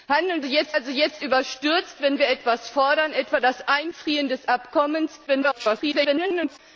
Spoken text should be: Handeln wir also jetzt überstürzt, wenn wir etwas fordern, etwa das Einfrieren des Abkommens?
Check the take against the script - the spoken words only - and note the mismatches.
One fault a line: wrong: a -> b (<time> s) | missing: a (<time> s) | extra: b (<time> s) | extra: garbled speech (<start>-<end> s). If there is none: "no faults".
wrong: wir -> jetzt (0.4 s)
extra: garbled speech (5.3-6.6 s)